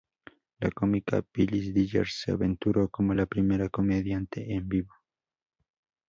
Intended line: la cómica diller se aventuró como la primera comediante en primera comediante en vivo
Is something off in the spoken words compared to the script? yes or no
yes